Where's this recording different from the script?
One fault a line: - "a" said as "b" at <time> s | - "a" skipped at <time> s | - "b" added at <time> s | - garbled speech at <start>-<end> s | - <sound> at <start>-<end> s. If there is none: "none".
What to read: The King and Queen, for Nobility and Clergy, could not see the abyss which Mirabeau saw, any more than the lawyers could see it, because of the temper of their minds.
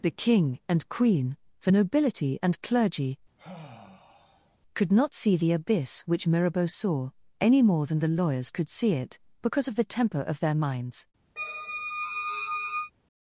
- sigh at 3.4-4.6 s
- squeak at 11.4-12.9 s